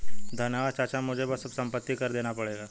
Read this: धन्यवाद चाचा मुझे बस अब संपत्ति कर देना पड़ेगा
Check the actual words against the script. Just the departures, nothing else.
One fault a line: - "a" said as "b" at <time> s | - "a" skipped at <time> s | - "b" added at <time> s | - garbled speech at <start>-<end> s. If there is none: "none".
none